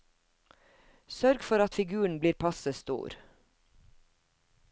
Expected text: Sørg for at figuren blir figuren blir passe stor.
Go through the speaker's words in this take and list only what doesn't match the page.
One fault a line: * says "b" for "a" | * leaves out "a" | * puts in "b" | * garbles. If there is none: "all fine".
* leaves out "figuren blir"